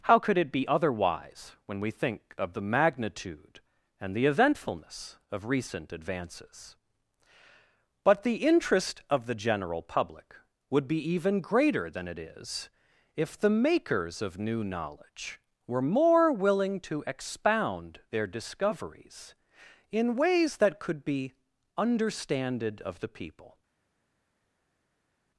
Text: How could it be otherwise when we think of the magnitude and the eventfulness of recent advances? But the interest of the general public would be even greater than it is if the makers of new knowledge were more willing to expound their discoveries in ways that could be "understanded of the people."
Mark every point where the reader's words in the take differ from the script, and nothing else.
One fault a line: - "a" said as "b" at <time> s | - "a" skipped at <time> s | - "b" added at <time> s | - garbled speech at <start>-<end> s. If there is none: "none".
none